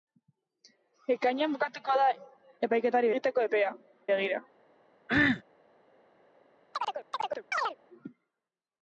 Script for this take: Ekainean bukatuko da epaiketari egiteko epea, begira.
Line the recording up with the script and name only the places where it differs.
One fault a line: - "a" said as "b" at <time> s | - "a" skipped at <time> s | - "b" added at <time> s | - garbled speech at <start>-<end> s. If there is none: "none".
none